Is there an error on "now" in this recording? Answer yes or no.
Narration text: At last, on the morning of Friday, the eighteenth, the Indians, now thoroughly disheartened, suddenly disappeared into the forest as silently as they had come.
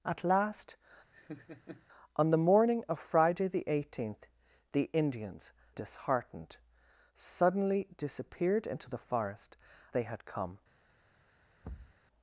yes